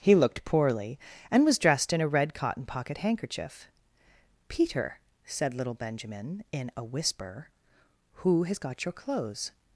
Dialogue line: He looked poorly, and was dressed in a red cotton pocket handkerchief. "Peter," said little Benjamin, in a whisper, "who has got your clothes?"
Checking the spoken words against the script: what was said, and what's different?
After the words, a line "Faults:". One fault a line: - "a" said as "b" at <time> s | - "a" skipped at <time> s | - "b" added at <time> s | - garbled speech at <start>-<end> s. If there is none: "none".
He looked poorly, and was dressed in a red cotton pocket handkerchief. "Peter," said little Benjamin, in a whisper, "who has got your clothes?"
Faults:
none